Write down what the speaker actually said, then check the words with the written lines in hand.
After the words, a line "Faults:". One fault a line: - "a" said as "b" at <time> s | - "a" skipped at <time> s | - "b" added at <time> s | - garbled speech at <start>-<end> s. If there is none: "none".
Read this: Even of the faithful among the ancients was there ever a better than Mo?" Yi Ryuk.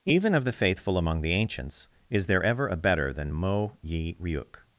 Even of the faithful among the ancients is there ever a better than Mo?" Yi Ryuk.
Faults:
- "was" said as "is" at 2.1 s